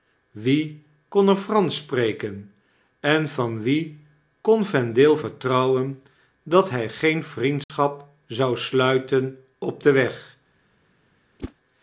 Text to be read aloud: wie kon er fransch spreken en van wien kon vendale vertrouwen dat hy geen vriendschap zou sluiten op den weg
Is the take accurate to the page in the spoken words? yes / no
yes